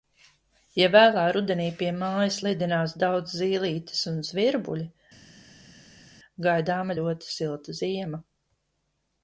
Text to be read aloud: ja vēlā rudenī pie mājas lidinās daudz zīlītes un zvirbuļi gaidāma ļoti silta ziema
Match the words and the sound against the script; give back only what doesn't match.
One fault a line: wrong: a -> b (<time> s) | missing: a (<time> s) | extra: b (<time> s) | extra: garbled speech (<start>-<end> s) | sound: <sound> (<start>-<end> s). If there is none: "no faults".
no faults